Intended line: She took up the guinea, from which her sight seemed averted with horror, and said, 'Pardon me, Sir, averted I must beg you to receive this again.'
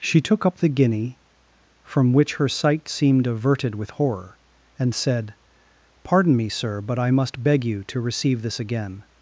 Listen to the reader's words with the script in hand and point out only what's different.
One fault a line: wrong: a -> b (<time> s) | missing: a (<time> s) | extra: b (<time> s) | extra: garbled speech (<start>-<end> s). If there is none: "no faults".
wrong: averted -> but (6.8 s)